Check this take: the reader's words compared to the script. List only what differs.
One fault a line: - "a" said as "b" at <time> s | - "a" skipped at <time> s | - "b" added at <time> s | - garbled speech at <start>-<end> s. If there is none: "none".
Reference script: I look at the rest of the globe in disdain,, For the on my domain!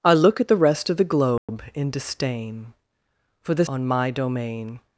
none